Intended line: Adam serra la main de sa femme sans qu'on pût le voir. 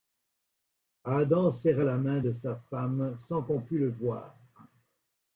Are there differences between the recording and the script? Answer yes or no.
no